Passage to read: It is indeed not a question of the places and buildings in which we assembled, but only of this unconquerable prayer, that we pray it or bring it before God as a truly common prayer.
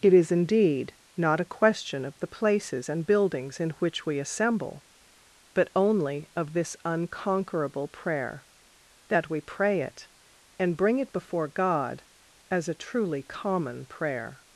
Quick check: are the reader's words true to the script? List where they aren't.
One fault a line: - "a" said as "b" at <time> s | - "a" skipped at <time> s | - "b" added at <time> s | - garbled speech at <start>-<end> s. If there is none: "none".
- "assembled" said as "assemble" at 4.2 s
- "or" said as "and" at 10.6 s